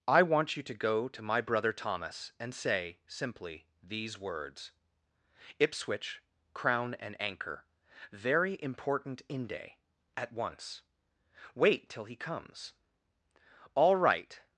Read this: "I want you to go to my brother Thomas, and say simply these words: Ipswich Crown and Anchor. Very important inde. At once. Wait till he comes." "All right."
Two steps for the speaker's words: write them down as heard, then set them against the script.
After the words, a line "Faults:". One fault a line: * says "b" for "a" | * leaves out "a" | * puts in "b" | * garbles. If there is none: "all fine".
"I want you to go to my brother Thomas, and say simply these words: Ipswich Crown and Anchor. Very important inde. At once. Wait till he comes." "All right."
Faults:
all fine